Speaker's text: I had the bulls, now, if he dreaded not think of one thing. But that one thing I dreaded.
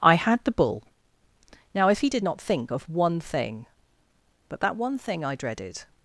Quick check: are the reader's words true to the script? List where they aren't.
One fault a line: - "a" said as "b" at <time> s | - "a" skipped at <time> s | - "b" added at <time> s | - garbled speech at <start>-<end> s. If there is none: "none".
- "bulls" said as "bull" at 0.5 s
- "dreaded" said as "did" at 2.1 s